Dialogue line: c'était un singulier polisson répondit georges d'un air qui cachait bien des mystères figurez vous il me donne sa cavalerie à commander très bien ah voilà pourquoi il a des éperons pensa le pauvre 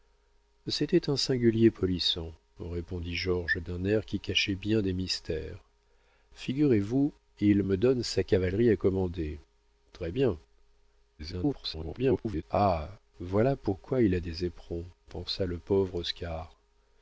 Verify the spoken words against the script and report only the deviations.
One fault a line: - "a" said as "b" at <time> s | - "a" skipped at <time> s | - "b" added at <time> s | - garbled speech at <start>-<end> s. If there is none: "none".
- garbled speech at 11.2-12.4 s